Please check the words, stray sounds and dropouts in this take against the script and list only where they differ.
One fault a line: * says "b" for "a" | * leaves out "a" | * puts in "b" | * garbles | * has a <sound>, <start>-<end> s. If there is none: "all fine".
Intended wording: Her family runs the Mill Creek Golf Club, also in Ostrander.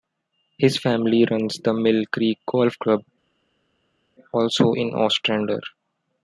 * says "His" for "Her"